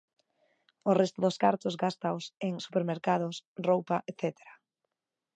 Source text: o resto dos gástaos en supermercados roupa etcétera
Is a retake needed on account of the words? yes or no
yes